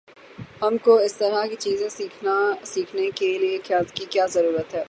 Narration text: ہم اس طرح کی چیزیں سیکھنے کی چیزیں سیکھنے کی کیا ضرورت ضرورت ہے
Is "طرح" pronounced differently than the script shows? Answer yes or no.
no